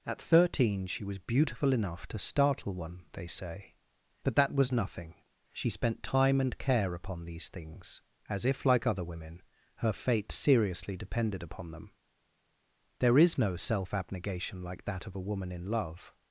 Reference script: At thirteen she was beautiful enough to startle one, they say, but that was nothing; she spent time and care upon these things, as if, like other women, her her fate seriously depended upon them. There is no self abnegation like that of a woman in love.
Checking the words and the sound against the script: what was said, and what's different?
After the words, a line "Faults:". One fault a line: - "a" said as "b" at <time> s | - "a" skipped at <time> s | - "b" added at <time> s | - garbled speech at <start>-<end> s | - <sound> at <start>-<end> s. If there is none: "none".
At thirteen she was beautiful enough to startle one, they say, but that was nothing; she spent time and care upon these things, as if, like other women, her fate seriously depended upon them. There is no self abnegation like that of a woman in love.
Faults:
- "her" skipped at 9.9 s